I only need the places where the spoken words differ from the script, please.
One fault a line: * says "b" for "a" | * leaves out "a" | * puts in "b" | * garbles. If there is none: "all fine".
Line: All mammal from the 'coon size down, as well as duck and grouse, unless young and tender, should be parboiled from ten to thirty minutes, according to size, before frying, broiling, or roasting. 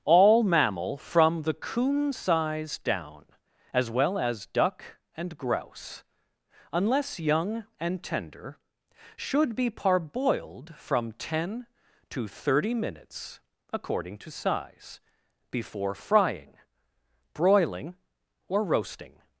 all fine